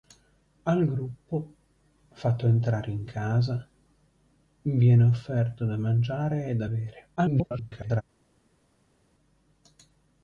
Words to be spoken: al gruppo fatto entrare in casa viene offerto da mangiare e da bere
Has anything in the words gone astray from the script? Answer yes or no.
yes